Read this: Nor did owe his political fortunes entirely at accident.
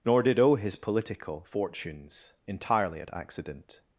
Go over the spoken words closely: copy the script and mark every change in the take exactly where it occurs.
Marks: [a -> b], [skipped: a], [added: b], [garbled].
Nor did owe his political fortunes entirely at accident.